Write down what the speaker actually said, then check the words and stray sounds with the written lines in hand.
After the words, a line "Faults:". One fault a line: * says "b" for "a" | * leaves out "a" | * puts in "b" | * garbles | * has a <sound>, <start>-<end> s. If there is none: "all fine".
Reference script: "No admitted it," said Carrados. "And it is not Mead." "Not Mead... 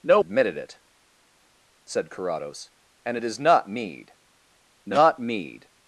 "No admitted it," said Carrados. "And it is not Mead." "Not Mead...
Faults:
all fine